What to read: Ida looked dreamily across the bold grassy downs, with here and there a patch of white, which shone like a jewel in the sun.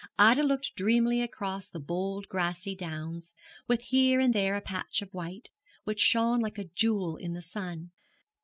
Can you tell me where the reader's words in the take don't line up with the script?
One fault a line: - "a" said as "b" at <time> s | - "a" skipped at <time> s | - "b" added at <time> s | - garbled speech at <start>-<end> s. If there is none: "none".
none